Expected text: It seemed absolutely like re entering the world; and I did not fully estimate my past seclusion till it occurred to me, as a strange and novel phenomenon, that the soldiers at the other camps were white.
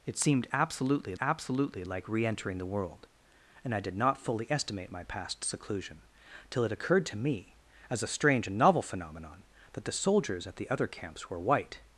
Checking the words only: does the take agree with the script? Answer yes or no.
no